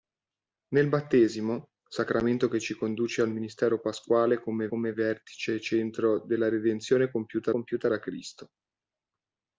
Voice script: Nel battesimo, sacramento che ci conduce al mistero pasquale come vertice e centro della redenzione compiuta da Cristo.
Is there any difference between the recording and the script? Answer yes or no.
yes